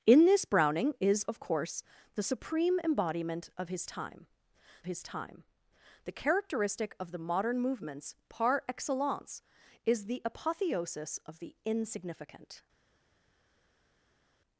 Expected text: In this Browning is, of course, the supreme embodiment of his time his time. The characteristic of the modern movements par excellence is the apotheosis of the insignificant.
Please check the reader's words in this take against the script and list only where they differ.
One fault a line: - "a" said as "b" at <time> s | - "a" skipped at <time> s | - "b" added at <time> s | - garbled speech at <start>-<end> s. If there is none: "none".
none